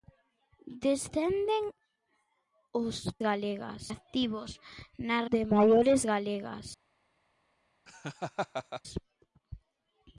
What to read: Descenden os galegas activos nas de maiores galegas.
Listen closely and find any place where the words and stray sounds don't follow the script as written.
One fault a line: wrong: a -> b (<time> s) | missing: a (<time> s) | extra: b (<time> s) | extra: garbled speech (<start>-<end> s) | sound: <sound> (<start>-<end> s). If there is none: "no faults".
sound: laugh (7.9-8.8 s)